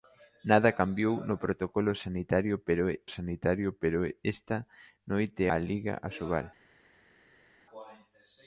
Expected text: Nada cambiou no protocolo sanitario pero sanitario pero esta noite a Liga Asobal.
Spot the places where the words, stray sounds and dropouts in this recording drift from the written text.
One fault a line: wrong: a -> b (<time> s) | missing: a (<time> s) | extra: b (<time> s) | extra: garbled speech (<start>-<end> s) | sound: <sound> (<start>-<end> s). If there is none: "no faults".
no faults